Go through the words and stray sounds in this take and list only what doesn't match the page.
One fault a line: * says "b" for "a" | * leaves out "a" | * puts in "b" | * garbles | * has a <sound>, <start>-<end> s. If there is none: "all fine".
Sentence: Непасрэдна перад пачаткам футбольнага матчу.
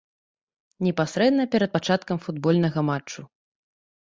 all fine